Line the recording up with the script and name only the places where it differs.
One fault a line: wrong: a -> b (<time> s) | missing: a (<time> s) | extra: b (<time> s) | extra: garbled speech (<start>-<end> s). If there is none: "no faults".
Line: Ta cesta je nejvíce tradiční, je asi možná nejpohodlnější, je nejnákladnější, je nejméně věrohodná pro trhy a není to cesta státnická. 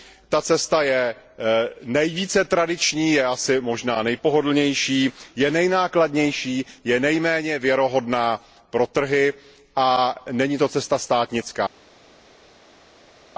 no faults